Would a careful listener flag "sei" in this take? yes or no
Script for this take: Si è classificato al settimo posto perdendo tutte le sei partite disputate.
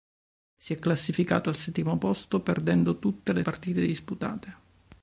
yes